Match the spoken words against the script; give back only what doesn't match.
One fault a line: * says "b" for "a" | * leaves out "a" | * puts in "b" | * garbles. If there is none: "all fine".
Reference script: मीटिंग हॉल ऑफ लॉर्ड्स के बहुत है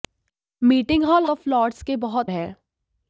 all fine